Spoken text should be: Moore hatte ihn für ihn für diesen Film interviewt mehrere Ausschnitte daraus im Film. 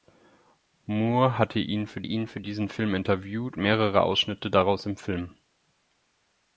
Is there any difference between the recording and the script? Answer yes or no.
no